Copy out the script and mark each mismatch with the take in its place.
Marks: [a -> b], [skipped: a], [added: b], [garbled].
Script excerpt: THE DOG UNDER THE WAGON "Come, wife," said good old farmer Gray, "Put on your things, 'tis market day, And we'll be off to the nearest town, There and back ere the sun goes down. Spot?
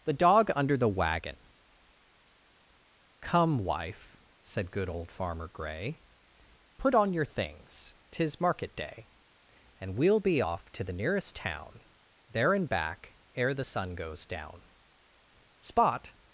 THE DOG UNDER THE WAGON "Come, wife," said good old farmer Gray, "Put on your things, 'tis market day, And we'll be off to the nearest town, There and back ere the sun goes down. Spot?